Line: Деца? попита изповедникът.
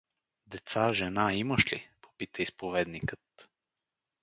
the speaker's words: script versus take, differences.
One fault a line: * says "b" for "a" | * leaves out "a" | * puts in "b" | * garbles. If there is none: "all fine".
* puts in "жена имаш ли"